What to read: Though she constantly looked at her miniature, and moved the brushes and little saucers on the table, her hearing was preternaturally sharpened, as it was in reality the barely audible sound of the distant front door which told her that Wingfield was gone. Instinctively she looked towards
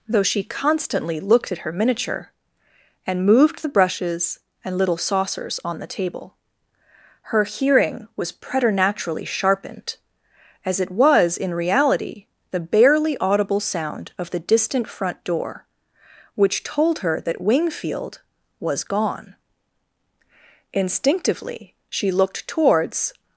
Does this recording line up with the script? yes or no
yes